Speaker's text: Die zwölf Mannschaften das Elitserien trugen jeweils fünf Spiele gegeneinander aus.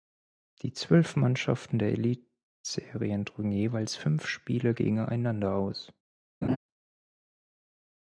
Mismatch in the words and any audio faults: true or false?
true